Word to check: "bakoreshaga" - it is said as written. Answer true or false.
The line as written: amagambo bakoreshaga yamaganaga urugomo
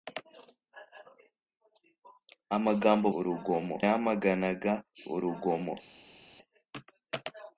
false